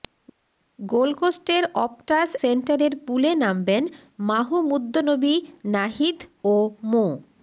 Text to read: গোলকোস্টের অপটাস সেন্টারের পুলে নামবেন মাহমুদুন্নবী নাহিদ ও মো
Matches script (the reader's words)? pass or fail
pass